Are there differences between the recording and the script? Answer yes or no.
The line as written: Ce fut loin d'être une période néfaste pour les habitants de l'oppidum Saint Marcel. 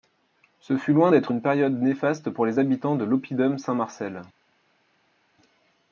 no